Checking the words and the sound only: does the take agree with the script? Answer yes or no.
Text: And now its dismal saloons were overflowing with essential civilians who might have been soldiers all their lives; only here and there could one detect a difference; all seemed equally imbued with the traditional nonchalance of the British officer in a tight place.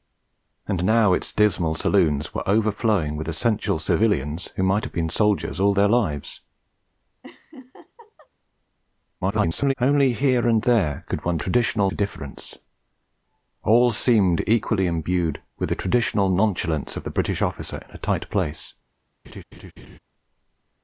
no